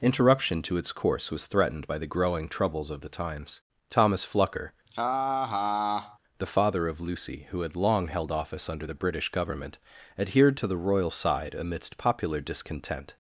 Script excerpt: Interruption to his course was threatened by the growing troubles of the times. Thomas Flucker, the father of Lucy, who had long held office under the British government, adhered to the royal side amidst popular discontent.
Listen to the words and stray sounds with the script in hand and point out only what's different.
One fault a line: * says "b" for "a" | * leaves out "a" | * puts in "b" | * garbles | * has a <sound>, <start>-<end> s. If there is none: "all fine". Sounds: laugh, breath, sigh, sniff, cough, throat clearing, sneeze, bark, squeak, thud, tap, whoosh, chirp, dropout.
* says "its" for "his"
* has a laugh, 4.9-6.2 s